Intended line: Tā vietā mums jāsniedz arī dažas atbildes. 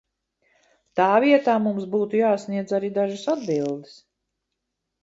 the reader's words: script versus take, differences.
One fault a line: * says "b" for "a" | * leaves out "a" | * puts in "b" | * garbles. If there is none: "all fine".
* puts in "būtu"